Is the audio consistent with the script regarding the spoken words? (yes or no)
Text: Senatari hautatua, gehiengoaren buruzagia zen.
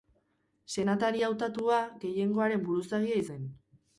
yes